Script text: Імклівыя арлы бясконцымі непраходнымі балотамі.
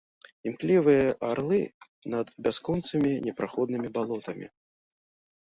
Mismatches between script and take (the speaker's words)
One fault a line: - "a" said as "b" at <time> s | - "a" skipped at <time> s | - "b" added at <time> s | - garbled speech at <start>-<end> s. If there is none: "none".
- "над" added at 2.1 s